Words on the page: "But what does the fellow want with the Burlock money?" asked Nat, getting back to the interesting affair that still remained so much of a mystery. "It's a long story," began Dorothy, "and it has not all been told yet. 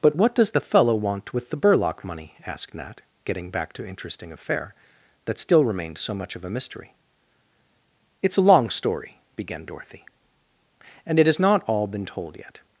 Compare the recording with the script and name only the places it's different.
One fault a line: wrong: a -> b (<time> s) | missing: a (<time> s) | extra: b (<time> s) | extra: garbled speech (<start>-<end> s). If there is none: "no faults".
missing: the (3.9 s)